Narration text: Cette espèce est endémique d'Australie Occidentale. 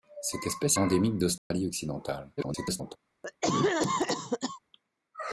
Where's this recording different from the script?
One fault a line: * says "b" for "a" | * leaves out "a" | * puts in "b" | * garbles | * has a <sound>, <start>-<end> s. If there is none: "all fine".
* leaves out "est"
* has a dropout, 1.4-1.5 s
* garbles
* has a cough, 3.2-4.6 s